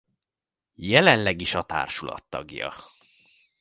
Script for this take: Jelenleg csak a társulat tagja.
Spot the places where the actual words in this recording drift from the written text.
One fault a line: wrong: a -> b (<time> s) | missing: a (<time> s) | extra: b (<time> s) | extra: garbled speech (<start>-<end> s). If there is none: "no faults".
wrong: csak -> is (1.4 s)